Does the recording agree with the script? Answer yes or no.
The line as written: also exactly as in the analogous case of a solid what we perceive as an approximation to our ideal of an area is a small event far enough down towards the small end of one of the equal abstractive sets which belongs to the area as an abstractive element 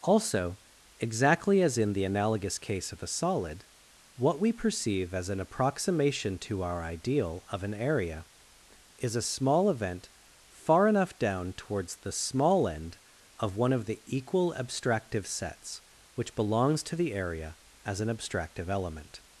yes